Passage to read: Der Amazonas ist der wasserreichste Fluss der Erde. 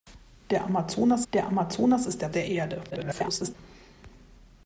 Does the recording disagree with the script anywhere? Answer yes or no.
yes